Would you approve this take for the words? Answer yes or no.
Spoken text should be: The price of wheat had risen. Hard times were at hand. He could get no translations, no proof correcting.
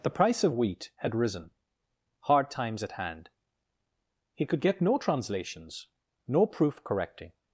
no